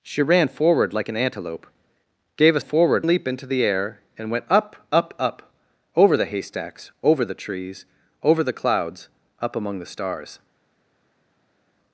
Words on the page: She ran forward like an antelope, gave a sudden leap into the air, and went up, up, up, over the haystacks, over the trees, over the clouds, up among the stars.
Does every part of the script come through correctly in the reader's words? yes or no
no